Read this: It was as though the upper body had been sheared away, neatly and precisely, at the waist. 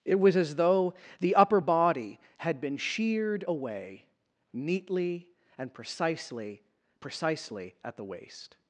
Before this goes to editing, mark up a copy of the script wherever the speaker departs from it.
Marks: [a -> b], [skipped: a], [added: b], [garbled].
It was as though the upper body had been sheared away, neatly and precisely, [added: precisely] at the waist.